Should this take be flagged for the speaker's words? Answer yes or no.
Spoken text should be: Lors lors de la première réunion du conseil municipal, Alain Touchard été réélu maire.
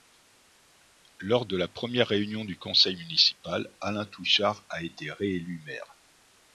yes